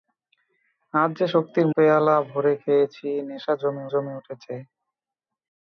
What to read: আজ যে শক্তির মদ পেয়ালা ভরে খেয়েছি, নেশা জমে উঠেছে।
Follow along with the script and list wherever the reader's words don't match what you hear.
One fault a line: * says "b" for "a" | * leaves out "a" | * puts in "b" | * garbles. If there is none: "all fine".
* leaves out "মদ"
* puts in "জমে"